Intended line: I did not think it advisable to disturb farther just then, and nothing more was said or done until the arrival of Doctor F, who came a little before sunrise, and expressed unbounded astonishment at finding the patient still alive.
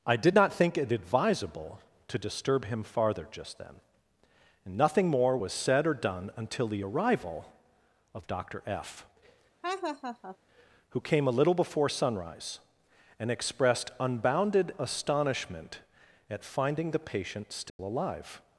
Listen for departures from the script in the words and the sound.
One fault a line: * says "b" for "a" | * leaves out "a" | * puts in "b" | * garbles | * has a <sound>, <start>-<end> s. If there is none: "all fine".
* puts in "him"
* has a laugh, 9.6-10.4 s
* has a dropout, 17.7-17.8 s